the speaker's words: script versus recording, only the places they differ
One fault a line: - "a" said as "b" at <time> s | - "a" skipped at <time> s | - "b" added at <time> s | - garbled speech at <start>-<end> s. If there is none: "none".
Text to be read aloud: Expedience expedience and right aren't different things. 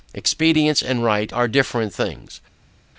- "expedience" skipped at 0.8 s
- "aren't" said as "are" at 1.3 s